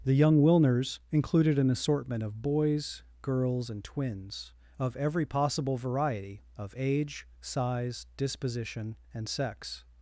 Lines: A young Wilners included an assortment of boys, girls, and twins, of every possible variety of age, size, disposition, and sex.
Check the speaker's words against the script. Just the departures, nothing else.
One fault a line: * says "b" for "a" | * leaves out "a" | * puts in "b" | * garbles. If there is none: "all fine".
* says "The" for "A"